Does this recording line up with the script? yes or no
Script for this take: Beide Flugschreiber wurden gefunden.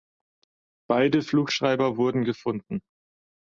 yes